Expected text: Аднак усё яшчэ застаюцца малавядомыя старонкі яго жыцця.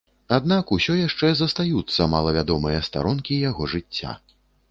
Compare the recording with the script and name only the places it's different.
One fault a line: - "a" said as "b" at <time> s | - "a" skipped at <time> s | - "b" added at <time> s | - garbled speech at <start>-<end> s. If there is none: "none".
none